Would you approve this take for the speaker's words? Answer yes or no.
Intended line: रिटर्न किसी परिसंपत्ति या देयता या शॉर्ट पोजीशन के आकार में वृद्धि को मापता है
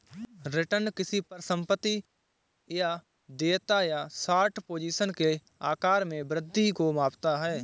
yes